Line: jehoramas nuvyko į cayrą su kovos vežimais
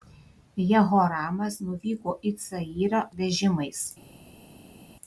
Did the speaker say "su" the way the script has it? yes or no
no